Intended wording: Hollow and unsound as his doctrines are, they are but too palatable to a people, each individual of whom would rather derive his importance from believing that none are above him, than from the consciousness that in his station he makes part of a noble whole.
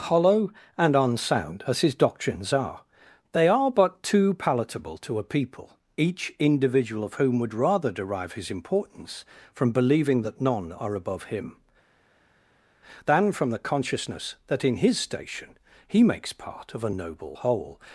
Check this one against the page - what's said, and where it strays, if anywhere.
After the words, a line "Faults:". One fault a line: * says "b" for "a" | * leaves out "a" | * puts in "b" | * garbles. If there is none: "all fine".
Hollow and unsound as his doctrines are, they are but too palatable to a people, each individual of whom would rather derive his importance from believing that none are above him, than from the consciousness that in his station he makes part of a noble whole.
Faults:
all fine